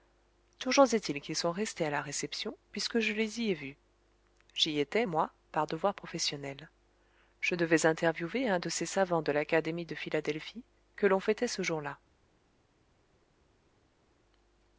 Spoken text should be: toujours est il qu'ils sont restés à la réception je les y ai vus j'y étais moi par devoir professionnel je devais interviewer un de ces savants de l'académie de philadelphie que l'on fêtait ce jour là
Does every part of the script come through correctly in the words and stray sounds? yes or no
no